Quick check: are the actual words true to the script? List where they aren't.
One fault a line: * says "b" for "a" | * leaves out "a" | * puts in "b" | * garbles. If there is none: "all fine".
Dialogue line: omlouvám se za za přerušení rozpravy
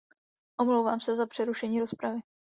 * leaves out "za"